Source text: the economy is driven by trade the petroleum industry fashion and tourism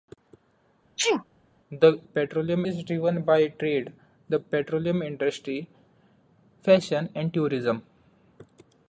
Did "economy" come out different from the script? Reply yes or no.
yes